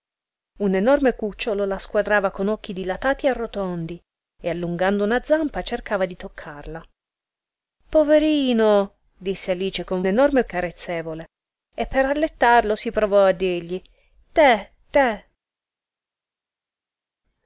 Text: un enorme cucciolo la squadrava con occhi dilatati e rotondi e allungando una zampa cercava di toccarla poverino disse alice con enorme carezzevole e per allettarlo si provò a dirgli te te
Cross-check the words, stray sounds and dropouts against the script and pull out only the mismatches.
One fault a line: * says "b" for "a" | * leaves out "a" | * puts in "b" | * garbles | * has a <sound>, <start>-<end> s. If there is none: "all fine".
all fine